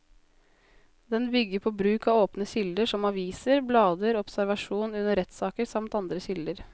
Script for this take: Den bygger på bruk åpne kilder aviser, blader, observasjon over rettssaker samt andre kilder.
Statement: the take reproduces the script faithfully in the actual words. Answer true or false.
false